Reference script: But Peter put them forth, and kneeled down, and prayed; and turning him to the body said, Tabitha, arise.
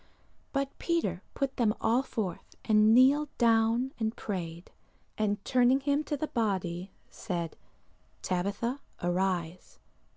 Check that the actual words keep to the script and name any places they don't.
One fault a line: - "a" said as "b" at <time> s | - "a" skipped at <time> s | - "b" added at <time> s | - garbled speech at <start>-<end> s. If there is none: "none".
- "all" added at 1.8 s